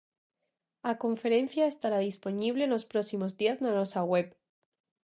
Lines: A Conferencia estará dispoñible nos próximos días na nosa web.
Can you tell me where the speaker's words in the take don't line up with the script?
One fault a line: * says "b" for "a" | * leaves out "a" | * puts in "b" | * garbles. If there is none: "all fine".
all fine